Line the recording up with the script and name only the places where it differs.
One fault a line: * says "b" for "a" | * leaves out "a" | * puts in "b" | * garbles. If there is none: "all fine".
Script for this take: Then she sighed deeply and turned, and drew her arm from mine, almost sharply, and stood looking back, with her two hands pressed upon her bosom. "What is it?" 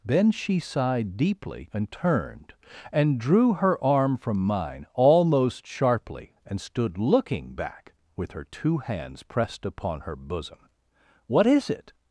all fine